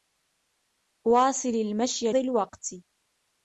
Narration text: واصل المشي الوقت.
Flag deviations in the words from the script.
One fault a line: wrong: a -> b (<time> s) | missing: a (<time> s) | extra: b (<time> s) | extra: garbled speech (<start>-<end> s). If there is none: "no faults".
no faults